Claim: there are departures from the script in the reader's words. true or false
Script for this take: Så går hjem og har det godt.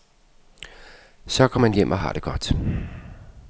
true